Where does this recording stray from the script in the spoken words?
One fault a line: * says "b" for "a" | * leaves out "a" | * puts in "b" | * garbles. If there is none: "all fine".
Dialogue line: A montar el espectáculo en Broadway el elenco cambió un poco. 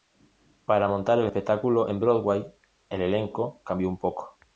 * says "Para" for "A"